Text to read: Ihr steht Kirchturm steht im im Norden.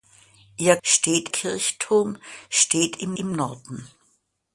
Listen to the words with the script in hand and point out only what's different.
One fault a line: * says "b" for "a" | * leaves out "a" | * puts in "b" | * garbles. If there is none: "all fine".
all fine